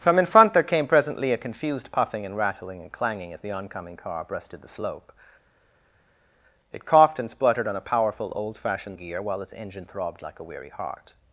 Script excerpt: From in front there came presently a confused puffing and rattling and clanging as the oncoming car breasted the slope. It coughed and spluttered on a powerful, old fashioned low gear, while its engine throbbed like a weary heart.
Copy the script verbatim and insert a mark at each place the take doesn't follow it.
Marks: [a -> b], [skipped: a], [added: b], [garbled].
From in front there came presently a confused puffing and rattling and clanging as the oncoming car breasted the slope. It coughed and spluttered on a powerful, old fashioned [skipped: low] gear, while its engine throbbed like a weary heart.